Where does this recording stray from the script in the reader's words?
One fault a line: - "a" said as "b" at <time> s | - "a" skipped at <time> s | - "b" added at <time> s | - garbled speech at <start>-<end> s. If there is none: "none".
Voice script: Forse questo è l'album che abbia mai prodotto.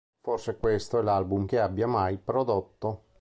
none